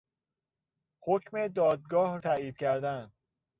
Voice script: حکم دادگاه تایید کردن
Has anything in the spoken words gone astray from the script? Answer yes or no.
no